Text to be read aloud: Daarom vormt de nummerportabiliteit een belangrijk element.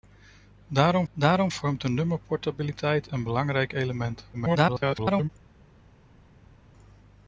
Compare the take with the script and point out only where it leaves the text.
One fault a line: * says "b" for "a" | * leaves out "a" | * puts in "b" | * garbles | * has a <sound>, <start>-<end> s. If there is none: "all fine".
* puts in "daarom"
* garbles